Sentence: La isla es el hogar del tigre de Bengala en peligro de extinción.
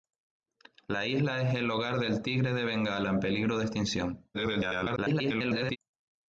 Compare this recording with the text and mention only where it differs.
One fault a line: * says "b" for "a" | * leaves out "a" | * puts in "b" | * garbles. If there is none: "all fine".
* garbles